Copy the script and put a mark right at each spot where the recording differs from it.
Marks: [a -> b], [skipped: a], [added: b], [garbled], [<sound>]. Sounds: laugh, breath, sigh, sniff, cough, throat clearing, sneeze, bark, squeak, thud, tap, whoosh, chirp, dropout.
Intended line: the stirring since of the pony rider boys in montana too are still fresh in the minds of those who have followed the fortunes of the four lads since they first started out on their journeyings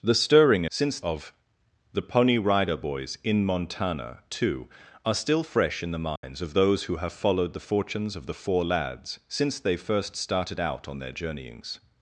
the stirring since of the pony rider boys in montana too are still fresh in the minds [dropout] of those who have followed the fortunes of the four lads since they first started out on their journeyings